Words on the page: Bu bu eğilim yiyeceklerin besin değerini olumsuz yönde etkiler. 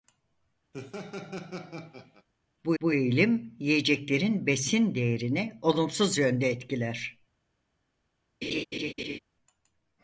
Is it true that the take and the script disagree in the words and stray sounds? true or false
true